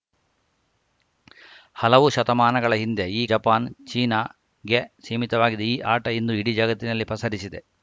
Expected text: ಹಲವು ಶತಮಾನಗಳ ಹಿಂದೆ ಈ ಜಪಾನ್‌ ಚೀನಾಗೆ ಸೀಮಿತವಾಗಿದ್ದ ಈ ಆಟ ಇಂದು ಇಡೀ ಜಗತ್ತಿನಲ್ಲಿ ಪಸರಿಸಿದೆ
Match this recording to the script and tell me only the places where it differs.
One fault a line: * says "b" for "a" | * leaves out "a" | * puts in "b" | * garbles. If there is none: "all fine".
all fine